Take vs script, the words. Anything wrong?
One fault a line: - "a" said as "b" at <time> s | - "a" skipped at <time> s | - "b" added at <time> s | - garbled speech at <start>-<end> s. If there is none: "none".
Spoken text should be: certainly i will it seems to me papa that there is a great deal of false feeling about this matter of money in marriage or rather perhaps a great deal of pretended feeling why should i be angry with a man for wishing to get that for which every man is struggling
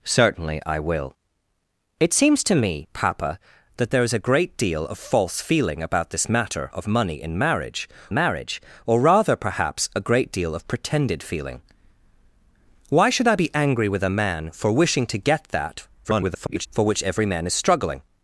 - "marriage" added at 8.1 s
- garbled speech at 16.0-16.7 s